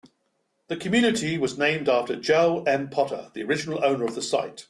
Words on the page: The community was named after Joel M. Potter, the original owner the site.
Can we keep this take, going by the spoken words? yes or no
no